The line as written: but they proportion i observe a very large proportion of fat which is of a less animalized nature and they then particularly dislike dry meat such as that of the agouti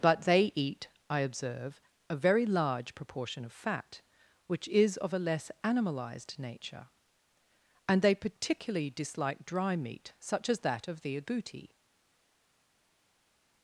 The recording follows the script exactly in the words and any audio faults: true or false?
false